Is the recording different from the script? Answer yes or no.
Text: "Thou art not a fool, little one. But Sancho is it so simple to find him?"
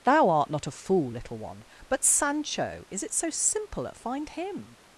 yes